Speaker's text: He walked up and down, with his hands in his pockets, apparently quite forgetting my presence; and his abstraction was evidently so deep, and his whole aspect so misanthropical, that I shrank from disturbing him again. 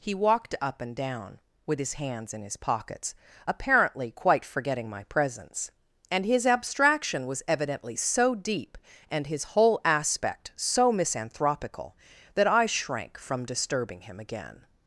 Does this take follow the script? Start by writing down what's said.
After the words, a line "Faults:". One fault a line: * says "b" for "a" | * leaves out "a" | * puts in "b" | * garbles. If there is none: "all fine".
He walked up and down, with his hands in his pockets, apparently quite forgetting my presence; and his abstraction was evidently so deep, and his whole aspect so misanthropical, that I shrank from disturbing him again.
Faults:
all fine